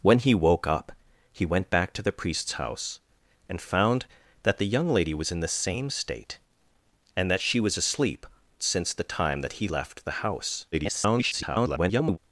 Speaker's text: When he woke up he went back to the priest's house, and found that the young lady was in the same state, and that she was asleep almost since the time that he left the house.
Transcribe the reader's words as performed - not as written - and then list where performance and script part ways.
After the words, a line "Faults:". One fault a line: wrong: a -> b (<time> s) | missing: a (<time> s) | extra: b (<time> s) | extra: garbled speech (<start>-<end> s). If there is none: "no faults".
When he woke up he went back to the priest's house, and found that the young lady was in the same state, and that she was asleep since the time that he left the house. [garbled]
Faults:
missing: almost (8.2 s)
extra: garbled speech (10.7-12.2 s)